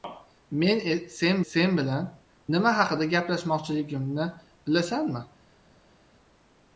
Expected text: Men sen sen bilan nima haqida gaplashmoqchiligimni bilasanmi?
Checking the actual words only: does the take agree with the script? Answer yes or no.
yes